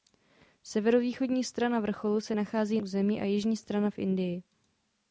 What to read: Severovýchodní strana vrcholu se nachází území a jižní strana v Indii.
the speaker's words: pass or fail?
pass